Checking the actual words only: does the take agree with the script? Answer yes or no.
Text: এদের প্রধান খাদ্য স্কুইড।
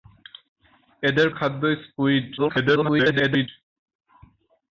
no